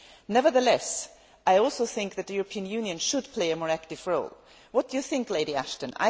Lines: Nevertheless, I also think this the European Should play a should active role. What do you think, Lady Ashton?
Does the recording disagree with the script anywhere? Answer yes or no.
yes